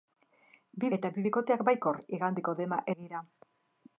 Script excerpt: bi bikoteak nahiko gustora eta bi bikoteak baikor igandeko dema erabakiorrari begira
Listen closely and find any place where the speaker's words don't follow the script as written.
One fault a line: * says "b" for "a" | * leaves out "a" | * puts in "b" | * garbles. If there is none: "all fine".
* leaves out "bikoteak nahiko gustora"
* leaves out "erabakiorrari"